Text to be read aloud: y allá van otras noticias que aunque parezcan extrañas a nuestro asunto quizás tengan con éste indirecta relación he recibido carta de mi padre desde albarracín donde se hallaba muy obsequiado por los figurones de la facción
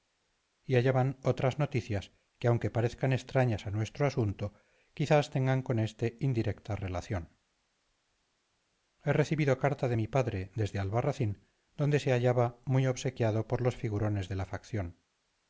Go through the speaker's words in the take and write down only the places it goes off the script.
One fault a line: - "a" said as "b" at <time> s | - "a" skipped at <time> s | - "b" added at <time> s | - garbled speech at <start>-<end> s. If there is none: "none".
none